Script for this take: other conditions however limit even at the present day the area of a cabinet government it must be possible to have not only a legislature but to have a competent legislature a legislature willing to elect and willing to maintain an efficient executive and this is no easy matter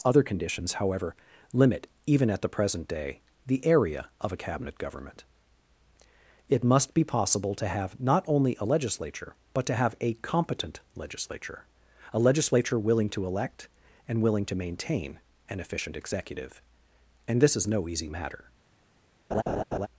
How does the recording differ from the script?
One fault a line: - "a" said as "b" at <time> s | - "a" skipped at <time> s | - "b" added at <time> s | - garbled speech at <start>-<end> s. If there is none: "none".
none